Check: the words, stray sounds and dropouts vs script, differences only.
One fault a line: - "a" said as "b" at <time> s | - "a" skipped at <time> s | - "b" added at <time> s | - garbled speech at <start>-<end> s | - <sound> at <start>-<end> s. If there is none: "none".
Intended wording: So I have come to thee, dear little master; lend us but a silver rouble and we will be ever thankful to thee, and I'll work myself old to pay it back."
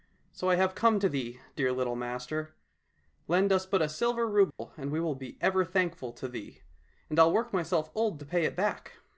- dropout at 4.5-4.6 s